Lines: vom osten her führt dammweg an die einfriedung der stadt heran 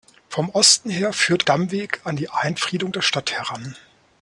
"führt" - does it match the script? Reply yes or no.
yes